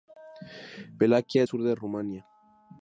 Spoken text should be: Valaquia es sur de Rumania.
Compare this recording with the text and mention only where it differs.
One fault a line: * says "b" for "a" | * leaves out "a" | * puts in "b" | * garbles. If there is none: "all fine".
all fine